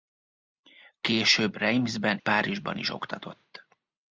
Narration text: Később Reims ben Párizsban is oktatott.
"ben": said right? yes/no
yes